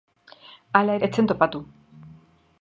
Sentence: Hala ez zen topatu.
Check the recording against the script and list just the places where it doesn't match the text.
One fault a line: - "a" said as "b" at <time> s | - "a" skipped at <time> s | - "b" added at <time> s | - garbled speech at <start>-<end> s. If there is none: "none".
none